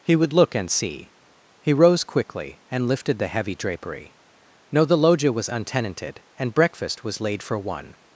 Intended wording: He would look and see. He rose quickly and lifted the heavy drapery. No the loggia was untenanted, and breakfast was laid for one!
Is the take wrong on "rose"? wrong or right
right